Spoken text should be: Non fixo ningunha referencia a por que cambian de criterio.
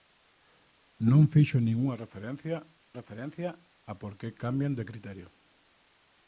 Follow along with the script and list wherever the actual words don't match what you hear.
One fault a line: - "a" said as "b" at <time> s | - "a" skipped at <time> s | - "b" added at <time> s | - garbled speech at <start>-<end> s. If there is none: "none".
- "referencia" added at 3.0 s